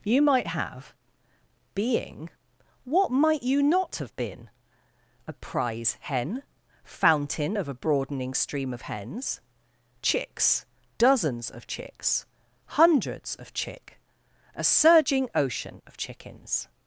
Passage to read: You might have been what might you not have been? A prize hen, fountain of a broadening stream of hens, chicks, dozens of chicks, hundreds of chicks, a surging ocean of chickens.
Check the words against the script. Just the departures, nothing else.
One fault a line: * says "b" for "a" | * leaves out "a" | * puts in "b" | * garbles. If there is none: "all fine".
* says "being" for "been"
* says "chick" for "chicks"